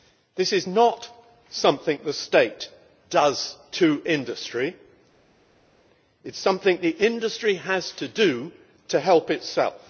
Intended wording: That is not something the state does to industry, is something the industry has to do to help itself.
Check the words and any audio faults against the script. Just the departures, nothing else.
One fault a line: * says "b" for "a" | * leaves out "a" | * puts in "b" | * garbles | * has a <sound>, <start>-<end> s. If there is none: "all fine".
* says "This" for "That"
* puts in "it"